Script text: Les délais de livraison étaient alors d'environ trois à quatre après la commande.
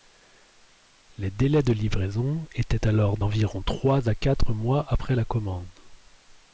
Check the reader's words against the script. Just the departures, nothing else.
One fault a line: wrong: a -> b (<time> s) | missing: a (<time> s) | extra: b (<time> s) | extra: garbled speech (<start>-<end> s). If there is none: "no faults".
extra: mois (4.5 s)